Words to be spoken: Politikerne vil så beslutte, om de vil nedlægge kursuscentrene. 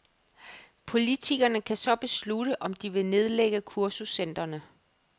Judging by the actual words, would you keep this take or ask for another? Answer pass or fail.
fail